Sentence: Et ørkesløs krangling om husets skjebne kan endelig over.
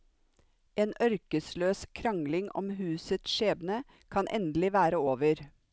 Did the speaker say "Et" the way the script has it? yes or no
no